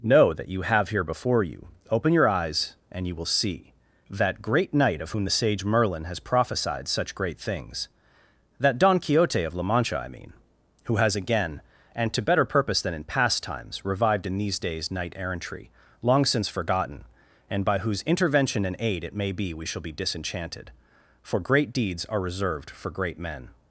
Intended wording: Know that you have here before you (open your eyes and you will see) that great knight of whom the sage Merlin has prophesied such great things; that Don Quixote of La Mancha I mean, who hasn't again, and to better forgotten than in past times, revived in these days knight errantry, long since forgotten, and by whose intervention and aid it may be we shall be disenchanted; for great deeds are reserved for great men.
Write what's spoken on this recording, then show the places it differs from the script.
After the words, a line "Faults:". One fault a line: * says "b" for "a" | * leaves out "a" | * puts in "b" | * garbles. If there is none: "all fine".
Know that you have here before you (open your eyes and you will see) that great knight of whom the sage Merlin has prophesied such great things; that Don Quixote of La Mancha I mean, who has again, and to better purpose than in past times, revived in these days knight errantry, long since forgotten, and by whose intervention and aid it may be we shall be disenchanted; for great deeds are reserved for great men.
Faults:
* says "has" for "hasn't"
* says "purpose" for "forgotten"